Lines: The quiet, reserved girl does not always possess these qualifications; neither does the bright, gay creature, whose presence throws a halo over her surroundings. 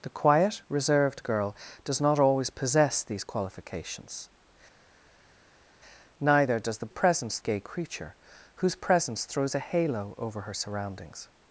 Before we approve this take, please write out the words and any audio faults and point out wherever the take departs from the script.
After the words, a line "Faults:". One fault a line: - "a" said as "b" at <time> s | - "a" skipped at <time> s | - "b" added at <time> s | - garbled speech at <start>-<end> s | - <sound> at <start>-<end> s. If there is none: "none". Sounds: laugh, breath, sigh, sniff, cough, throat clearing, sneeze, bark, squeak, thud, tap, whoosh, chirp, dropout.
The quiet, reserved girl does not always possess these qualifications; neither does the presence, gay creature, whose presence throws a halo over her surroundings.
Faults:
- "bright" said as "presence" at 6.9 s